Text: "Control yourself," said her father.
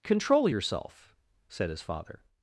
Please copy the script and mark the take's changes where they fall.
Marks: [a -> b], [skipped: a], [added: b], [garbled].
"Control yourself," said [her -> his] father.